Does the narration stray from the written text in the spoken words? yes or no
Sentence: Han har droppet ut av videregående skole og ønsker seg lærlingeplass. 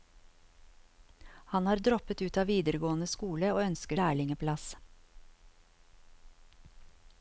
yes